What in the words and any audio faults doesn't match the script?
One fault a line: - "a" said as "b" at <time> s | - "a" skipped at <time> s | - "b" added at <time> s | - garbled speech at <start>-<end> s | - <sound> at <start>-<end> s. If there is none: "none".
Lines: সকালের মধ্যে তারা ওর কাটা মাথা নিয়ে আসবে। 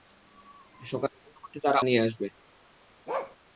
- "ওর কাটা মাথা" skipped at 1.8 s
- bark at 3.1-3.4 s